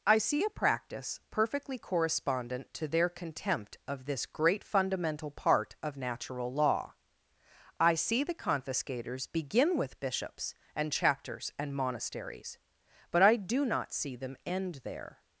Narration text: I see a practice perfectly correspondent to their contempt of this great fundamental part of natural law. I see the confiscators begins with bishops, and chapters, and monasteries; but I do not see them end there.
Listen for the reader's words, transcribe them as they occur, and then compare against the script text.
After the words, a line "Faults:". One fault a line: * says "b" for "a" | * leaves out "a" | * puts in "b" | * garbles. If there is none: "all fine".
I see a practice perfectly correspondent to their contempt of this great fundamental part of natural law. I see the confiscators begin with bishops, and chapters, and monasteries; but I do not see them end there.
Faults:
* says "begin" for "begins"